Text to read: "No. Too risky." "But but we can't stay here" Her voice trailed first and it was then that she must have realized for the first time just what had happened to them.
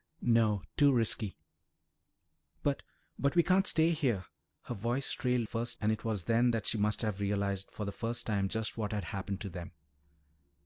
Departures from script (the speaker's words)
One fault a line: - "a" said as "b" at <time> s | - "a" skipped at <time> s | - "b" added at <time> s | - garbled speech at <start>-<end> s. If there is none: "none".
none